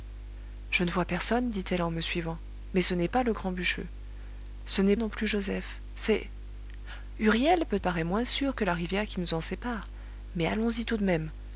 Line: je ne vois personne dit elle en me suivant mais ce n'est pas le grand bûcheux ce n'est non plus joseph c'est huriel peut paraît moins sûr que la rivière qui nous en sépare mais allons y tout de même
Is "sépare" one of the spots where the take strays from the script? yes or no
no